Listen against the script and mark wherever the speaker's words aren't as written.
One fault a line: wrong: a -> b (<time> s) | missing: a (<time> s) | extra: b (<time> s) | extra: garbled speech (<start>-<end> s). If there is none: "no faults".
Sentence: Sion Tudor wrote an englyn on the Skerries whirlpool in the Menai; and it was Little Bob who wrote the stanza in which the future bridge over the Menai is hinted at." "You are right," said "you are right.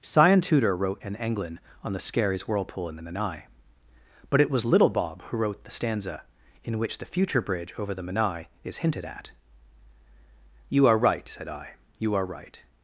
wrong: and -> but (4.3 s)
extra: I (11.5 s)